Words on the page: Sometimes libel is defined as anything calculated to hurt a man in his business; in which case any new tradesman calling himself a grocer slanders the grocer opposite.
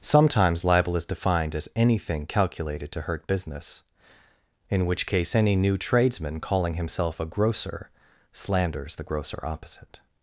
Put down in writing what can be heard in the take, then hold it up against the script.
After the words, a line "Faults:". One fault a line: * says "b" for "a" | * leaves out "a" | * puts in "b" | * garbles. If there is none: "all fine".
Sometimes libel is defined as anything calculated to hurt business; in which case any new tradesman calling himself a grocer slanders the grocer opposite.
Faults:
* leaves out "a man in his"